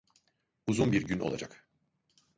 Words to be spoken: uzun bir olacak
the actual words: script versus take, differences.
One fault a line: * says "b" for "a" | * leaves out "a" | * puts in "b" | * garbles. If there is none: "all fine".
* puts in "gün"